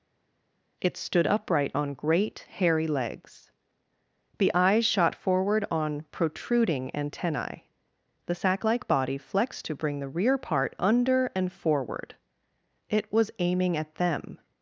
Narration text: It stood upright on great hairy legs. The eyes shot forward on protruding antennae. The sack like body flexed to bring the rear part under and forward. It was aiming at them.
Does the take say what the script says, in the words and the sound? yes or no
yes